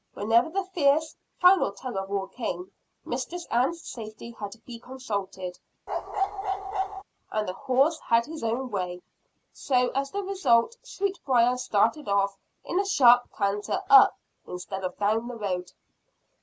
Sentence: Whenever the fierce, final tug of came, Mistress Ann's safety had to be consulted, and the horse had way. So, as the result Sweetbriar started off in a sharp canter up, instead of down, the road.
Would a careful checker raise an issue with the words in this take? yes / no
yes